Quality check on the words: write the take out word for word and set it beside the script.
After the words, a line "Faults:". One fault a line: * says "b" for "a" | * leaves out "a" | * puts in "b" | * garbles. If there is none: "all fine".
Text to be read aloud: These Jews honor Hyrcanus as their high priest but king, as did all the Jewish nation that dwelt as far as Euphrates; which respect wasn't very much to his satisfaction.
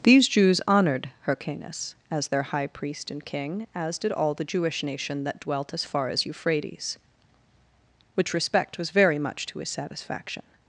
These Jews honored Hyrcanus as their high priest and king, as did all the Jewish nation that dwelt as far as Euphrates; which respect was very much to his satisfaction.
Faults:
* says "honored" for "honor"
* says "and" for "but"
* says "was" for "wasn't"